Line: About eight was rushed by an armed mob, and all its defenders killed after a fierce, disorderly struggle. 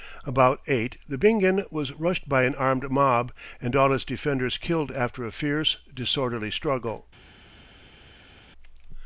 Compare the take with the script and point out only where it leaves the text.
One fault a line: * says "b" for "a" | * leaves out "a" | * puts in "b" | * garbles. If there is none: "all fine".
* puts in "the Bingen"